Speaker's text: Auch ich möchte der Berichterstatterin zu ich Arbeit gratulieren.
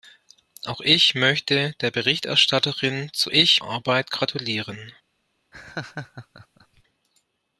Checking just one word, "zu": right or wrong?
right